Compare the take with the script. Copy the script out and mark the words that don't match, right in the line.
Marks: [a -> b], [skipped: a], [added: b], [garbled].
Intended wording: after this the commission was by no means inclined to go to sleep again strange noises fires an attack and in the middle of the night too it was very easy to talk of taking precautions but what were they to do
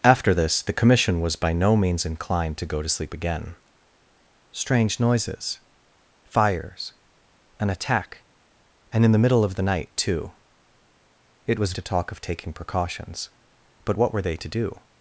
after this the commission was by no means inclined to go to sleep again strange noises fires an attack and in the middle of the night too it was [skipped: very easy] to talk of taking precautions but what were they to do